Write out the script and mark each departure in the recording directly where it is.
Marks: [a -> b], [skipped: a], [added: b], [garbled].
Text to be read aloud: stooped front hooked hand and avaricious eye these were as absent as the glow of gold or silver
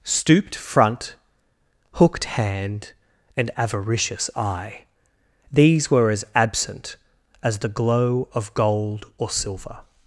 stooped front hooked hand and avaricious eye these were as absent as the glow of gold or silver